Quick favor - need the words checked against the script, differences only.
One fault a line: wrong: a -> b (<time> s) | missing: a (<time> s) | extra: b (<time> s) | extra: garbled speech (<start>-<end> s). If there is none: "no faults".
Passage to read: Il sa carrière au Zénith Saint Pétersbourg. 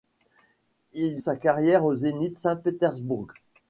no faults